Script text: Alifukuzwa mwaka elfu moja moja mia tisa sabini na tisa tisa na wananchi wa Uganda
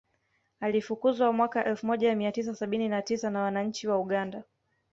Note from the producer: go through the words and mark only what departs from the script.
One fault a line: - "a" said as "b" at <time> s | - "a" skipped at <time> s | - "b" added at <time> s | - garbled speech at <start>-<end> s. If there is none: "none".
- "moja" skipped at 2.1 s
- "tisa" skipped at 3.3 s